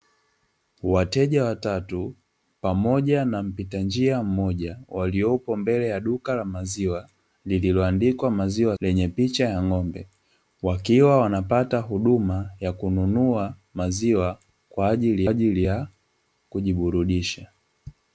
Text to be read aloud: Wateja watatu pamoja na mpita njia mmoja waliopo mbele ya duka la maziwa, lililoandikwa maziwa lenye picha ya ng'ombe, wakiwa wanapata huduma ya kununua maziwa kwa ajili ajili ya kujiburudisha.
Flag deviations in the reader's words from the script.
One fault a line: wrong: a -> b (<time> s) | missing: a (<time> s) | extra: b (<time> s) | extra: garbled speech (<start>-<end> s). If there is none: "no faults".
no faults